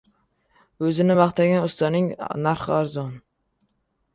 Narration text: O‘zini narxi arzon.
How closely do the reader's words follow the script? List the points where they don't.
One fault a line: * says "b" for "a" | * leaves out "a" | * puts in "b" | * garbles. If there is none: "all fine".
* puts in "maqtagan ustaning"